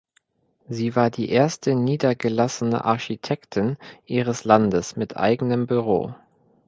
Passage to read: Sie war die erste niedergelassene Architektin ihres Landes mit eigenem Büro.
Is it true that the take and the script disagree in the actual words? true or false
false